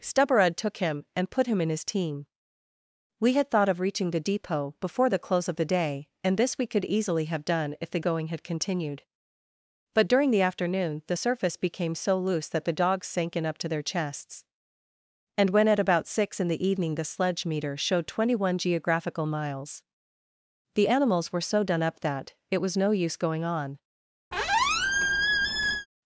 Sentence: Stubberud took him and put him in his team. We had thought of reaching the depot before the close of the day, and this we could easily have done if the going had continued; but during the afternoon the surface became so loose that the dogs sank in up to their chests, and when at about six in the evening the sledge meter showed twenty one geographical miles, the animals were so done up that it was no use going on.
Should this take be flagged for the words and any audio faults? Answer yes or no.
yes